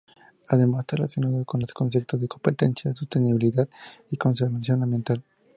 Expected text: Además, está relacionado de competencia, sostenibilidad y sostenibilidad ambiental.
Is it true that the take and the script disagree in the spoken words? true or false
true